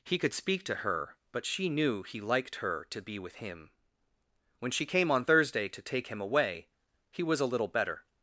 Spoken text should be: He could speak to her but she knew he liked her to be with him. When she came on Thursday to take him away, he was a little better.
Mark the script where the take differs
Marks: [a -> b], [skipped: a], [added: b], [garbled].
He could speak to her but she knew he liked her to be with him. When she came on Thursday to take him away, he was a little better.